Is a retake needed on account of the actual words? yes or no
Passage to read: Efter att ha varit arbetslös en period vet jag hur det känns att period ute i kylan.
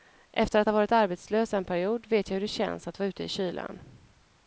yes